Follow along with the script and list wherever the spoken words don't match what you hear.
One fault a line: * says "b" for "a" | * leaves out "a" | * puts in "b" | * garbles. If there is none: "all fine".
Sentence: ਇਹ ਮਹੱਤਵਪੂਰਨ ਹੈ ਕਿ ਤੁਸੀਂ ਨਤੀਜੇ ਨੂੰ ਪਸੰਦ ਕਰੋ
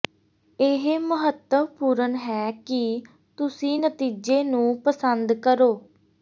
all fine